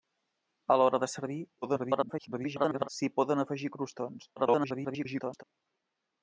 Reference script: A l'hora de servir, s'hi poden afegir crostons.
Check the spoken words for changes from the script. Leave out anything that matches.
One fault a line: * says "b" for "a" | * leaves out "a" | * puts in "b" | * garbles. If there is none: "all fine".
* garbles
* garbles